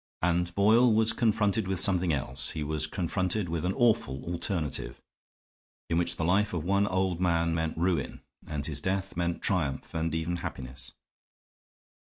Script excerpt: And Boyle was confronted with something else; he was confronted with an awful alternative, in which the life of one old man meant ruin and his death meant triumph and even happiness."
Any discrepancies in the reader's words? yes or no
no